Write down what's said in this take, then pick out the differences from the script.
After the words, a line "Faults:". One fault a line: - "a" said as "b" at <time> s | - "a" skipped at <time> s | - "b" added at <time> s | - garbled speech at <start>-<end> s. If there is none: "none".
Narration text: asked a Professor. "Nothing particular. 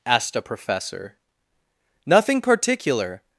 asked a Professor. "Nothing particular.
Faults:
none